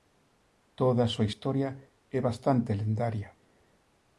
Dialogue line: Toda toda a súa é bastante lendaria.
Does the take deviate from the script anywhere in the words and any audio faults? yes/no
yes